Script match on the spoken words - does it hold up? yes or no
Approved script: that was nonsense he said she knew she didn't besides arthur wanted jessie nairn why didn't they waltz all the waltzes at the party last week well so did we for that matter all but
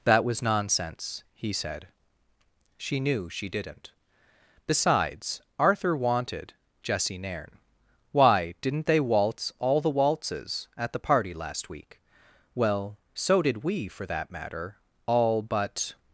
yes